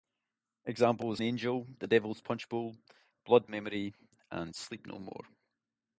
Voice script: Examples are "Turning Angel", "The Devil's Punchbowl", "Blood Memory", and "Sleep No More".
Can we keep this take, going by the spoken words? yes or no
no